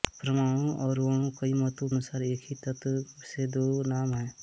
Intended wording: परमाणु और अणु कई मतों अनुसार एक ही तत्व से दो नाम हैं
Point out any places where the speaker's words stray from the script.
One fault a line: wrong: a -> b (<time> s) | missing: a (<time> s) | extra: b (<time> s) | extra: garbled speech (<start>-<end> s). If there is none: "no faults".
no faults